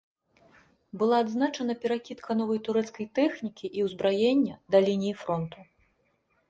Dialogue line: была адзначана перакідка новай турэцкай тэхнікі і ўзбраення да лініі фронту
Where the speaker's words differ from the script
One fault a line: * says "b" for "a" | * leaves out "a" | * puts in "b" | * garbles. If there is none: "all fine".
all fine